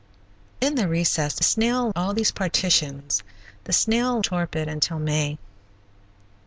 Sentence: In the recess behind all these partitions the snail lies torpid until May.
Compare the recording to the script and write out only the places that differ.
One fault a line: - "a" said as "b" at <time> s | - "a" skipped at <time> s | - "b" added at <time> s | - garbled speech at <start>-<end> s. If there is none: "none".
- "behind" said as "snail" at 1.4 s
- "lies" skipped at 4.2 s